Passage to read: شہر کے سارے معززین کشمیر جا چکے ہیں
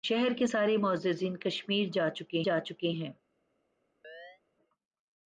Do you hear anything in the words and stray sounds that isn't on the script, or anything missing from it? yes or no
yes